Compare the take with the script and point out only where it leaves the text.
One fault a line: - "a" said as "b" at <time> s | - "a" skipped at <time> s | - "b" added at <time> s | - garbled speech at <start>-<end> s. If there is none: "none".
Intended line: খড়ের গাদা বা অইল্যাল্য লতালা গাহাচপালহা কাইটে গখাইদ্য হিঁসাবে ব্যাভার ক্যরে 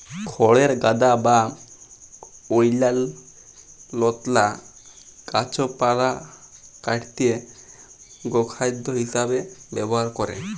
none